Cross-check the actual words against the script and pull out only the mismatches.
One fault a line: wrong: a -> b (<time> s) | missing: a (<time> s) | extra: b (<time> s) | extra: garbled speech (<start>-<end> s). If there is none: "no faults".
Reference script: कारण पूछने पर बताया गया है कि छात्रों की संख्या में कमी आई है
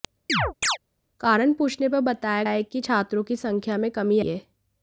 missing: गया (2.4 s)
missing: आई (4.2 s)